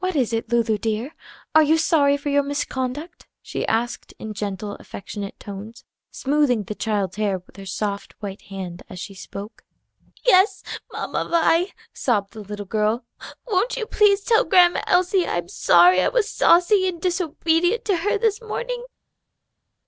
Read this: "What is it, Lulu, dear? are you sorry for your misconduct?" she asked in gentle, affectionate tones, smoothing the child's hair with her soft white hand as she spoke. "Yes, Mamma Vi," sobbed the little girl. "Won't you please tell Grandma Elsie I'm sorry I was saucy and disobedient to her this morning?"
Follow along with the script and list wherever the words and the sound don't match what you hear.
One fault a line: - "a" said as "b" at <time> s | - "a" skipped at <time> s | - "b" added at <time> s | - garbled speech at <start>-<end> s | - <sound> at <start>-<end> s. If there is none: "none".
none